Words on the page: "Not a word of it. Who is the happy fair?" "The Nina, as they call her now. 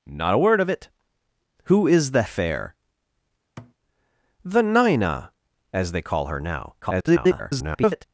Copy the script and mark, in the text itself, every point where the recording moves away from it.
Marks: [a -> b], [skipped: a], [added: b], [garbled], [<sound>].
"Not a word of it. Who is the [skipped: happy] fair?" [thud] "The Nina, as they call her now. [garbled]